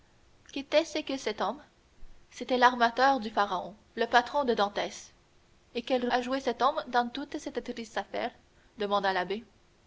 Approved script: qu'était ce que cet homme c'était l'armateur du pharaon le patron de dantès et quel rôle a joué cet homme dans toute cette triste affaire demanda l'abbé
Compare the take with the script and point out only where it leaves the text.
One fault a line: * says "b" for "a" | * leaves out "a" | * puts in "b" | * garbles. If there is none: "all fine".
* leaves out "rôle"